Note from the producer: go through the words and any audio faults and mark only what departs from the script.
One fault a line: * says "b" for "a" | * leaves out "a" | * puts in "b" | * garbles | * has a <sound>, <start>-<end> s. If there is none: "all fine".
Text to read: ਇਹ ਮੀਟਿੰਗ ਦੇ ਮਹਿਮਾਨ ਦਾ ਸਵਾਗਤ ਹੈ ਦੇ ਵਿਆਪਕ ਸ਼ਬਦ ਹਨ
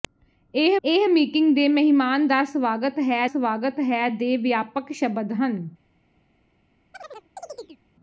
* puts in "ਇਹ"
* puts in "ਸਵਾਗਤ ਹੈ"
* has a chirp, 6.9-7.8 s